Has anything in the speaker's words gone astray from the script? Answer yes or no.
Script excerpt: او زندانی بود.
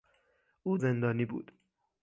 no